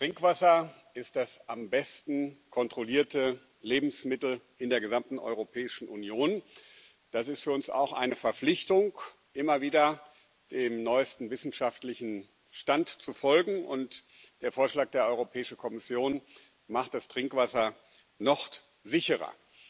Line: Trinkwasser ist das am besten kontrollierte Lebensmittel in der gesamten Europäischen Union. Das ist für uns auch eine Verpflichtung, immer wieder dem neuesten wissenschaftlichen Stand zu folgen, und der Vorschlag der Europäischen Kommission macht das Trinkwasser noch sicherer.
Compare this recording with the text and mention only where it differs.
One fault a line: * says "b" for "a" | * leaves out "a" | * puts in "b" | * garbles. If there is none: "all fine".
all fine